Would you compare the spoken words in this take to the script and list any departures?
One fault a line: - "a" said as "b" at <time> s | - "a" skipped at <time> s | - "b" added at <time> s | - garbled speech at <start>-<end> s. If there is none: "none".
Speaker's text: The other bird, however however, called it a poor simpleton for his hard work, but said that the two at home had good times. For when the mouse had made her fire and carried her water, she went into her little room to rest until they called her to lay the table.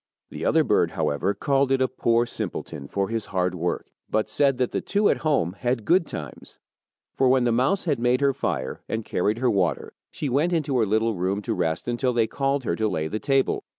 - "however" skipped at 1.4 s